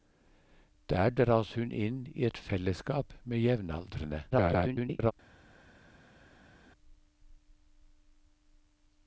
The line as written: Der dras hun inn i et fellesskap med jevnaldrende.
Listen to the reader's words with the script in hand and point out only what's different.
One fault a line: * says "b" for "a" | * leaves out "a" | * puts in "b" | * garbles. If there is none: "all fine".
* garbles